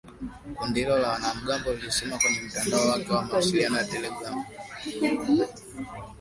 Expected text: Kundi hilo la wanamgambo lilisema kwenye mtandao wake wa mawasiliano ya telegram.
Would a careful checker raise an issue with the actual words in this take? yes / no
no